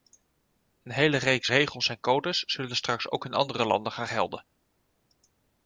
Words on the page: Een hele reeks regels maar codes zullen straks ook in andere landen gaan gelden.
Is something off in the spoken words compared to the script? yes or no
yes